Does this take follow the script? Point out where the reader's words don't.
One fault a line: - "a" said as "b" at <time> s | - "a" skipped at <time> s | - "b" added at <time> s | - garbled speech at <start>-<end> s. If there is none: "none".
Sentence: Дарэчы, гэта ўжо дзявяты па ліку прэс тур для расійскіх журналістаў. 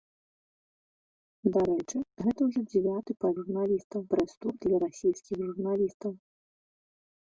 - "ліку" said as "журналістаў" at 3.4 s